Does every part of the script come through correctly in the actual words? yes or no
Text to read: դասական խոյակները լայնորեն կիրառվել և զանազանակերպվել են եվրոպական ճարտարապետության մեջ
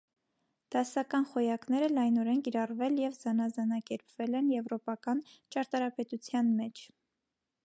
yes